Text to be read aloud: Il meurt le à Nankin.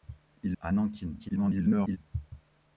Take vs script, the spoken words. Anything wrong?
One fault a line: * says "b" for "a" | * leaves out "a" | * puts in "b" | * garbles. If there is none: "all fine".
* leaves out "meurt le"
* garbles